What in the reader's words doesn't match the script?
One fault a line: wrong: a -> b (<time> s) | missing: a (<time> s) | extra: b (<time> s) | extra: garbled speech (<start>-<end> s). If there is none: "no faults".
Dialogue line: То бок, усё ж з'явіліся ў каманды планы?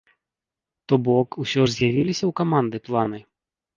no faults